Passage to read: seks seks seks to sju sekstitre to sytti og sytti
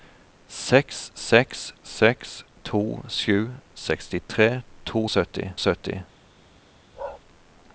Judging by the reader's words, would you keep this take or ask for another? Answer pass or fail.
pass